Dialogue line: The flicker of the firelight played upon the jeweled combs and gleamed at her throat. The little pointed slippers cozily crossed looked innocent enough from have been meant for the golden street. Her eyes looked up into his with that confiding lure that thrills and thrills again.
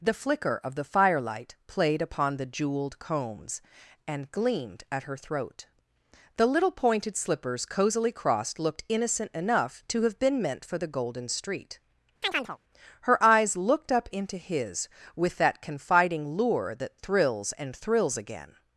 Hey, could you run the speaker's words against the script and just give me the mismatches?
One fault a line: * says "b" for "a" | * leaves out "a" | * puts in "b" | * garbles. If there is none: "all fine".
* says "to" for "from"